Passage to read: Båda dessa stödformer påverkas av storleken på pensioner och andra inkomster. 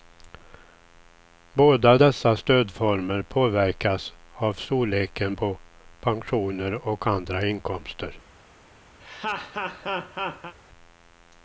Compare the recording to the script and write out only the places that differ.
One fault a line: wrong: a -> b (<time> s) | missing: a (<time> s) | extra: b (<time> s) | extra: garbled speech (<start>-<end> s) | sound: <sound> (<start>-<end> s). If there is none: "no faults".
sound: laugh (9.0-10.5 s)